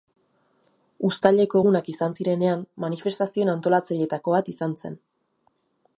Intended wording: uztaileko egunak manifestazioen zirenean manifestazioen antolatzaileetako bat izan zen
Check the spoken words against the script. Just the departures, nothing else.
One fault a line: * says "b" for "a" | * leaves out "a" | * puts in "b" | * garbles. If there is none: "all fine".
* says "izan" for "manifestazioen"